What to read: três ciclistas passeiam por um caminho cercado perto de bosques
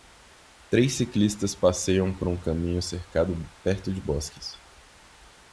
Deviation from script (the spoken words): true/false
false